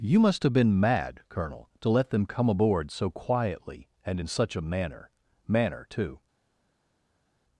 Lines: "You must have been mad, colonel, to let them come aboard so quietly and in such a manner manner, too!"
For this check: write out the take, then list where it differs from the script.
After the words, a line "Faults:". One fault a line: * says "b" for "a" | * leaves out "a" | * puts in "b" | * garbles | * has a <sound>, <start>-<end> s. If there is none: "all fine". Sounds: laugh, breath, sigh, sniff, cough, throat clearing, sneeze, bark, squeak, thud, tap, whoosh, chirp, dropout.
"You must have been mad, colonel, to let them come aboard so quietly and in such a manner manner, too!"
Faults:
all fine